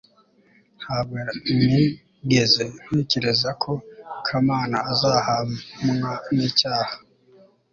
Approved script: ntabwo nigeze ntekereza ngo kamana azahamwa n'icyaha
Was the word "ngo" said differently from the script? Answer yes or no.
yes